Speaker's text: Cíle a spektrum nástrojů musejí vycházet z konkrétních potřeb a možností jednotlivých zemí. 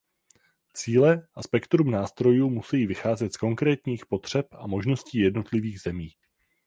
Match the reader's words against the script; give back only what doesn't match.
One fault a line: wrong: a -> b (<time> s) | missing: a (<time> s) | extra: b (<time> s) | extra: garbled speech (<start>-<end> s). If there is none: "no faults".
no faults